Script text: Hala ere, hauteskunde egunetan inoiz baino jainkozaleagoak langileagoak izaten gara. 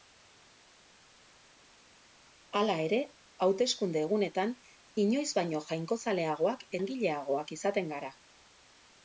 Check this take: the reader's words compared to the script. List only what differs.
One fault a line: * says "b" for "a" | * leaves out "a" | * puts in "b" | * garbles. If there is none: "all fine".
all fine